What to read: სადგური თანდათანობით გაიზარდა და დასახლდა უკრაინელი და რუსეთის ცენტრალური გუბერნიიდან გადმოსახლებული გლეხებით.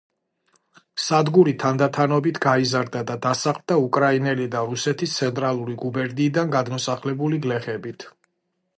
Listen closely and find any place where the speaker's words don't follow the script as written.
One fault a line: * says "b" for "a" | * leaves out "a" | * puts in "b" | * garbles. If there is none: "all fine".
all fine